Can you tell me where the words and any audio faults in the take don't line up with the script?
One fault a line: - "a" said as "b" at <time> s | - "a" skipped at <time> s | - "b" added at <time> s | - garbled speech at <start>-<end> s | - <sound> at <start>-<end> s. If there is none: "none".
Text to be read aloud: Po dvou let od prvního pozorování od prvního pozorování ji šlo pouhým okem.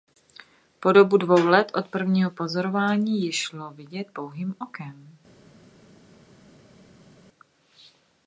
- "dobu" added at 0.9 s
- "od prvního pozorování" skipped at 3.2 s
- "vidět" added at 3.7 s